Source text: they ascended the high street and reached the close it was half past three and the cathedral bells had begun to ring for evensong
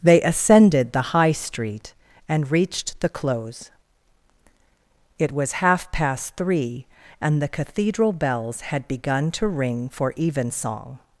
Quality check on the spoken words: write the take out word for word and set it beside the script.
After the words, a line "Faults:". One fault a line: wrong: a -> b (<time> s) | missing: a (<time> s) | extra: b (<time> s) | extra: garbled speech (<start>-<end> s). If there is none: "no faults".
they ascended the high street and reached the close it was half past three and the cathedral bells had begun to ring for evensong
Faults:
no faults